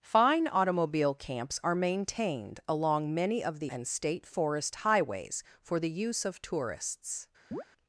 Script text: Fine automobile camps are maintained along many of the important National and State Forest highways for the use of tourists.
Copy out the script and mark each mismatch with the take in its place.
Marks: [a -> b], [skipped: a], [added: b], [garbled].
Fine automobile camps are maintained along many of the [skipped: important National] and State Forest highways for the use of tourists.